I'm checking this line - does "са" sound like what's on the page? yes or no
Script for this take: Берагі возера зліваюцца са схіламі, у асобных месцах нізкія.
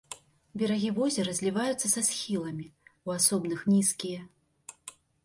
yes